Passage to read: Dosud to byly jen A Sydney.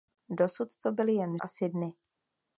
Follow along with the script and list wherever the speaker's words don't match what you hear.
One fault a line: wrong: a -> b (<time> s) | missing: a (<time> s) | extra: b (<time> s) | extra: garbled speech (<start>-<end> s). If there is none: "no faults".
no faults